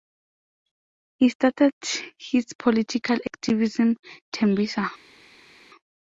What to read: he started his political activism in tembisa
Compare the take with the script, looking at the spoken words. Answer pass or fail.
fail